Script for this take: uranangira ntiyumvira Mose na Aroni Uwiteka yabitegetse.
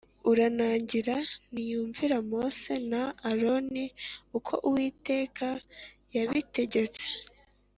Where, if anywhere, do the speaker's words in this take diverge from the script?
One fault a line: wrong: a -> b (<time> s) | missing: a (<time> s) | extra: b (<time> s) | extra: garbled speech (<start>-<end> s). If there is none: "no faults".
extra: uko (4.4 s)